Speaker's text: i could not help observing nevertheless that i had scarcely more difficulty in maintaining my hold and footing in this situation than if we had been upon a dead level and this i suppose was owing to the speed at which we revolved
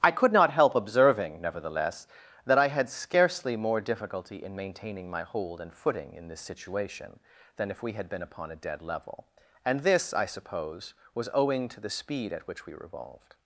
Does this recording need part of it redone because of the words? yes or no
no